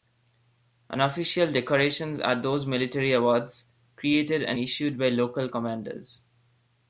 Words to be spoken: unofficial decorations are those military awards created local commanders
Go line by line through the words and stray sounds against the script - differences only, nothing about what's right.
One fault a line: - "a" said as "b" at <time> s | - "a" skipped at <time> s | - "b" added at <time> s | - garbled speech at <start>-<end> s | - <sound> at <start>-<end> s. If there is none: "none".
- "and issued by" added at 4.4 s